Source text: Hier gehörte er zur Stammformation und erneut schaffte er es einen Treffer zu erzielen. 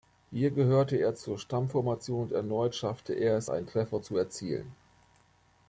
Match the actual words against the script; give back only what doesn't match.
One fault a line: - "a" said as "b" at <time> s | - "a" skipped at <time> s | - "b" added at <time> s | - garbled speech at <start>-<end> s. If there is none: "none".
none